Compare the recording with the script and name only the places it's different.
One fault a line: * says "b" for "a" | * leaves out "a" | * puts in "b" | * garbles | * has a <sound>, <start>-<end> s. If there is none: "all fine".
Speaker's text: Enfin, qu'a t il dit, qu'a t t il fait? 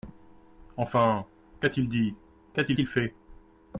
all fine